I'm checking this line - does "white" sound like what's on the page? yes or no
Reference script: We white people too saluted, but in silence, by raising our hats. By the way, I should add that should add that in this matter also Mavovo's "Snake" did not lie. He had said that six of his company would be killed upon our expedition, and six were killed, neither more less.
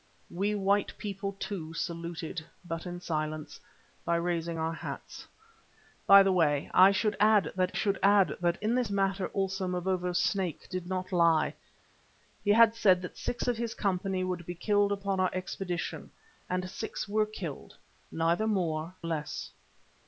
yes